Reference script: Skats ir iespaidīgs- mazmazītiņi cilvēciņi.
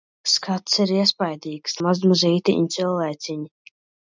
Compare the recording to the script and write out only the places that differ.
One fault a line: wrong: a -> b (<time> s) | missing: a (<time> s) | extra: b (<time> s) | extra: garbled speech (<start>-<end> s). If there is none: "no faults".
no faults